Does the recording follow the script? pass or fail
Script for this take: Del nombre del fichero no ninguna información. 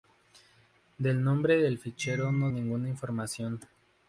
pass